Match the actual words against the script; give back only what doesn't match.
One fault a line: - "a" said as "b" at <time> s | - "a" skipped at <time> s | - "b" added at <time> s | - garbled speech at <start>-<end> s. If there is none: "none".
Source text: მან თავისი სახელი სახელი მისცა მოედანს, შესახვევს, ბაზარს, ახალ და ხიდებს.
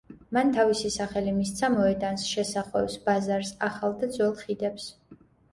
- "სახელი" skipped at 1.3 s
- "ძველ" added at 4.2 s